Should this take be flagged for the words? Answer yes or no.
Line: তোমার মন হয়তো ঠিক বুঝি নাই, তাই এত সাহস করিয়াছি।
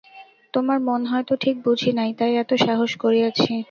no